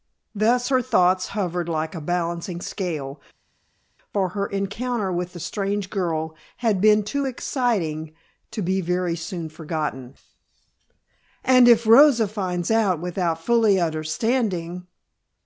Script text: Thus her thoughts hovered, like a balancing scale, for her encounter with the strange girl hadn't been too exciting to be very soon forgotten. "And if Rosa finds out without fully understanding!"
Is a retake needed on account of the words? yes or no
yes